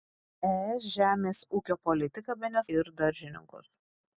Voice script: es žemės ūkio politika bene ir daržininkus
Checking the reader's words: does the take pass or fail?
pass